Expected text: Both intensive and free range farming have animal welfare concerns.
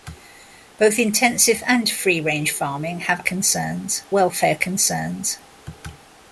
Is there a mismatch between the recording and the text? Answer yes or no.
yes